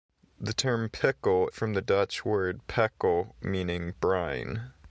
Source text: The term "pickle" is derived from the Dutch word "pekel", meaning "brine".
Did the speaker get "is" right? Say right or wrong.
wrong